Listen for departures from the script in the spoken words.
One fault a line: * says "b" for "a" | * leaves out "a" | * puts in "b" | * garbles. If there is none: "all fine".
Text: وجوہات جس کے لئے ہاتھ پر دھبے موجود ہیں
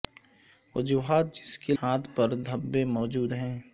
* leaves out "لئے"